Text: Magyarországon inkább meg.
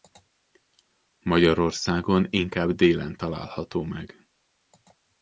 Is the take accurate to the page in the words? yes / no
no